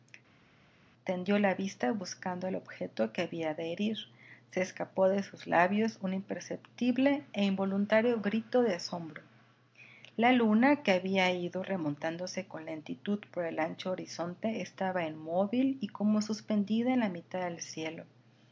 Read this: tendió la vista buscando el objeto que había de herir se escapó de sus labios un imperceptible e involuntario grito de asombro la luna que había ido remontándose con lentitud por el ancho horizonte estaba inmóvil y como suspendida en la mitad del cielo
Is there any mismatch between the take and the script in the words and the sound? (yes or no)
no